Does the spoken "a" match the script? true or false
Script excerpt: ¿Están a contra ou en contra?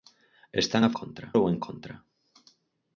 true